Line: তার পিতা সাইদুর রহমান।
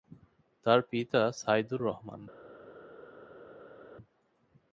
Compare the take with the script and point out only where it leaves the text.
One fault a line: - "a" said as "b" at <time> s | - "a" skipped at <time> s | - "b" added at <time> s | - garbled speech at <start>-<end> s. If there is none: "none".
none